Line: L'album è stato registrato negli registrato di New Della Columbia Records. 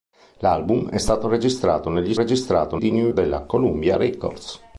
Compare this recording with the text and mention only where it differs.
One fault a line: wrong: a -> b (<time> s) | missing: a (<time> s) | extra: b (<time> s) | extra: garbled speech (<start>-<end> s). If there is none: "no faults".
no faults